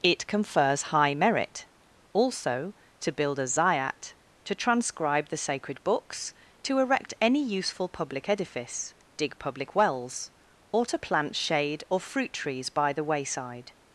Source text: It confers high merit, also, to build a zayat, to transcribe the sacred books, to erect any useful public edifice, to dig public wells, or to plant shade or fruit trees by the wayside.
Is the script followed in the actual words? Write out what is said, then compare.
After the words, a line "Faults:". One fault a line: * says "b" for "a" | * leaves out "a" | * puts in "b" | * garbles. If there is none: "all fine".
It confers high merit, also, to build a zayat, to transcribe the sacred books, to erect any useful public edifice, dig public wells, or to plant shade or fruit trees by the wayside.
Faults:
* leaves out "to"